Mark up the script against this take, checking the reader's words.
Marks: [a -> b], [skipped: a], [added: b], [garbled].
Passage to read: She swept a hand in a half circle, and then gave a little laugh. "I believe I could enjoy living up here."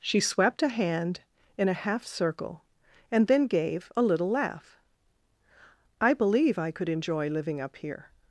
She swept a hand in a half circle, and then gave a little laugh. "I believe I could enjoy living up here."